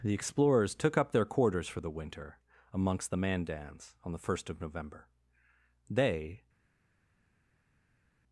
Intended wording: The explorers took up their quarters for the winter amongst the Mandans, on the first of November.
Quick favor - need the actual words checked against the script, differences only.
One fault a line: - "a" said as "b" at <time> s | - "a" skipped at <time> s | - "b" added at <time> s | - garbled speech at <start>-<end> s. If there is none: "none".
- "They" added at 5.9 s